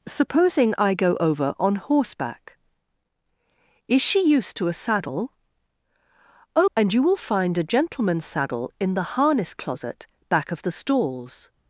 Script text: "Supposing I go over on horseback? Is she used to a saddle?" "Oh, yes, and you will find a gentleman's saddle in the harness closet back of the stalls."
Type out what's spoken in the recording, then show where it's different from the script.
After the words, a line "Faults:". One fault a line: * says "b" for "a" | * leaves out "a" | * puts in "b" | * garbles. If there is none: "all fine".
"Supposing I go over on horseback? Is she used to a saddle?" "Oh, and you will find a gentleman's saddle in the harness closet back of the stalls."
Faults:
* leaves out "yes"